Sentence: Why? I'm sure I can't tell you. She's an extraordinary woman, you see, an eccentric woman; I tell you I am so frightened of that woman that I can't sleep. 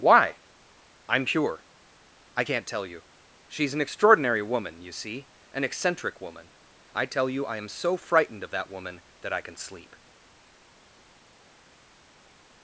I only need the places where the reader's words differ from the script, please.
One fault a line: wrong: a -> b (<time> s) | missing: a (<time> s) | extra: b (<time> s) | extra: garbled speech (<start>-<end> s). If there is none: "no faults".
wrong: sure -> pure (1.2 s)
wrong: can't -> can (9.4 s)